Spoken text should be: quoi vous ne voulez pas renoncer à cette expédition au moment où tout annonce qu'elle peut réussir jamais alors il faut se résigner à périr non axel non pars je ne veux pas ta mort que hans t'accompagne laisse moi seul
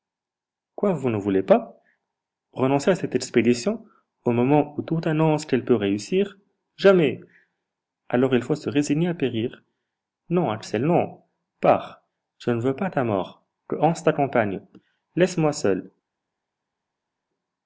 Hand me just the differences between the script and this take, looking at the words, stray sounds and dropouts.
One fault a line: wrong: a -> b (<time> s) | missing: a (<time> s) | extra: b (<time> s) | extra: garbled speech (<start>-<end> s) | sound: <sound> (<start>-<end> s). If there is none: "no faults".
no faults